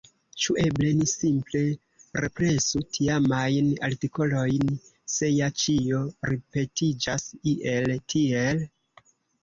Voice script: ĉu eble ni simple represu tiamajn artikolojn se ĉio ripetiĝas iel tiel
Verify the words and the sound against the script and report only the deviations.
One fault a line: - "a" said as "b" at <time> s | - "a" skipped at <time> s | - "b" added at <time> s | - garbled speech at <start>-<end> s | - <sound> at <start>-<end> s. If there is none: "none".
- "ja" added at 5.3 s